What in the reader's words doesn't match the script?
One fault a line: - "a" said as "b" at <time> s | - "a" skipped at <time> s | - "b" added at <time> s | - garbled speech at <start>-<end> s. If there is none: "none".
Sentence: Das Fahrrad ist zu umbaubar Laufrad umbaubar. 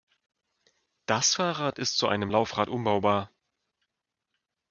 - "umbaubar" said as "einem" at 2.1 s